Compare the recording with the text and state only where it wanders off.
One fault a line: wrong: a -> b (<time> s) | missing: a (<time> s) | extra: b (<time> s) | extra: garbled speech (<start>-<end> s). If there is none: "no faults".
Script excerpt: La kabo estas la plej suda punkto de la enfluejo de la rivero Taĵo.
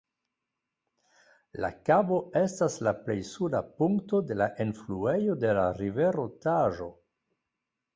no faults